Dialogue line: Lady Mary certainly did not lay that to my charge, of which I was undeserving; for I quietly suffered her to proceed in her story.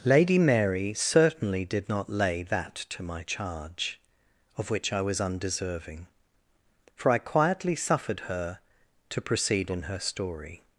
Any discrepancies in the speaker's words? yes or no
no